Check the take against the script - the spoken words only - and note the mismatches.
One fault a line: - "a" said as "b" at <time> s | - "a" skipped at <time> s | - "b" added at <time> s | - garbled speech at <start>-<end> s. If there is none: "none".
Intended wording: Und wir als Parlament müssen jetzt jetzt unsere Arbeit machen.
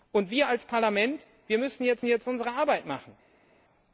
none